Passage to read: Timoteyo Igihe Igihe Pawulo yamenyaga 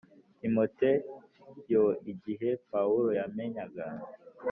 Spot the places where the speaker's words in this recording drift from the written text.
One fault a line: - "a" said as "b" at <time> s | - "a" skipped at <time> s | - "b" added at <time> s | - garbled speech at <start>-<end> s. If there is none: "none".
- "Igihe" skipped at 2.5 s